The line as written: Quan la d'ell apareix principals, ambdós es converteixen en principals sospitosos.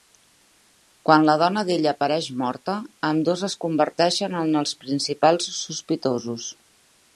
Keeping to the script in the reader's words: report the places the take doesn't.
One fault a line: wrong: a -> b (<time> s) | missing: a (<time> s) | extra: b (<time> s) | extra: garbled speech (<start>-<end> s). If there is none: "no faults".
extra: dona (1.4 s)
wrong: principals -> morta (2.4 s)
extra: els (4.6 s)